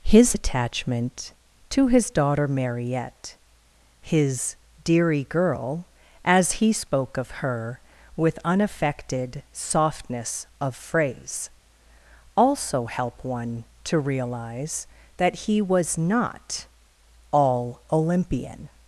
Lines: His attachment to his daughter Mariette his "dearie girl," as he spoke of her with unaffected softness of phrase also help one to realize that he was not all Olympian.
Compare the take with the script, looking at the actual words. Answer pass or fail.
pass